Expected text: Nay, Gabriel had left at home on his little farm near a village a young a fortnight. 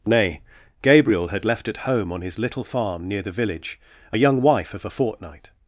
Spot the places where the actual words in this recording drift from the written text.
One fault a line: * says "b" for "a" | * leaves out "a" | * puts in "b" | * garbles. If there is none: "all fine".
* says "the" for "a"
* puts in "wife of"